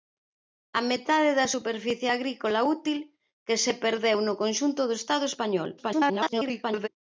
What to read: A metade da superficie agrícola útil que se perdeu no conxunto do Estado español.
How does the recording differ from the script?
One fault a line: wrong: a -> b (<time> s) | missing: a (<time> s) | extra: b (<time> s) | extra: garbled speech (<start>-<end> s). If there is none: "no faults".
extra: garbled speech (5.8-6.9 s)